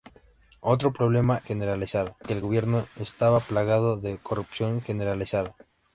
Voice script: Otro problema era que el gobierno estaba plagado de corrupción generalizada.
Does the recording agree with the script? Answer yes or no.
no